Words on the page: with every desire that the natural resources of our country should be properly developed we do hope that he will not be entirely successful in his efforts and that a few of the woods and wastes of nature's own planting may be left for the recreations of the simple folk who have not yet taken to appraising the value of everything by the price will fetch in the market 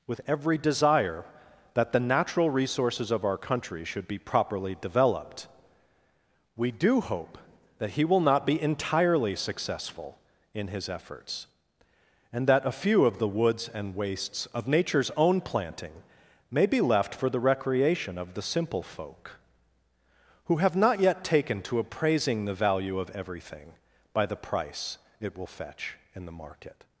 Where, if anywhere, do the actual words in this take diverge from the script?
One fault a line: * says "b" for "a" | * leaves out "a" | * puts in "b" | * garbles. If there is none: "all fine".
* says "recreation" for "recreations"
* puts in "it"